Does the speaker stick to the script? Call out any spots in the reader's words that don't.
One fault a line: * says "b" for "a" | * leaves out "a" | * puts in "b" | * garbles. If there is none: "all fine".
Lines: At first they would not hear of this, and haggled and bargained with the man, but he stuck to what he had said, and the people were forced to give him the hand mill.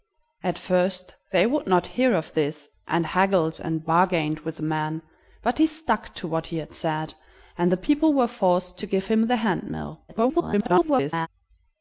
* garbles